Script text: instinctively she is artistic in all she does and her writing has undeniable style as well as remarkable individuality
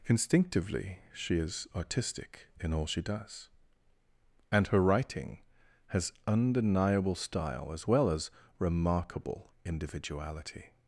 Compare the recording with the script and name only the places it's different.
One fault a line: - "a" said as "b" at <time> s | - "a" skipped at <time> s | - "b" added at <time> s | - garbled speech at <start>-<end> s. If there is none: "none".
none